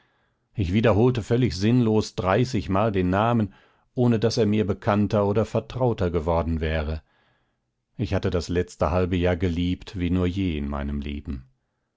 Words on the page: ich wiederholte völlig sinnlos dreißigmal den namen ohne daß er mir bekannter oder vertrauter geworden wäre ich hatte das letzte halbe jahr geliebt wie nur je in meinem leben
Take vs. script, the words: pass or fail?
pass